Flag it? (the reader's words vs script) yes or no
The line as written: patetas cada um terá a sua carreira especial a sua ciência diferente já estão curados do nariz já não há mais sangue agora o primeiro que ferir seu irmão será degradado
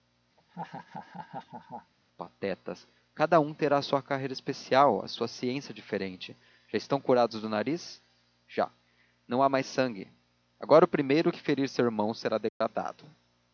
no